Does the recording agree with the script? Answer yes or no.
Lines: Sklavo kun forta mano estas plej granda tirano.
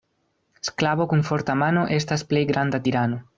yes